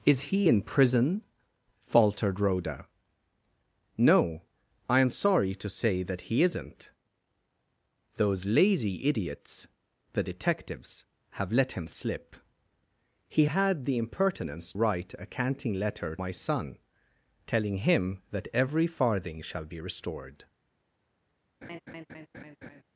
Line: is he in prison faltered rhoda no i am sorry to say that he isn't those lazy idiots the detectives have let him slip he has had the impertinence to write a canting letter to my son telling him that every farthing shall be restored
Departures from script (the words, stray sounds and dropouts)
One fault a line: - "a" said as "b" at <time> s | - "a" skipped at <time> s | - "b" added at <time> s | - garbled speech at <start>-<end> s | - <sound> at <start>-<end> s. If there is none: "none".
- "has" skipped at 13.4 s
- "to" skipped at 14.7 s
- "to" skipped at 16.2 s
- laugh at 21.6-22.8 s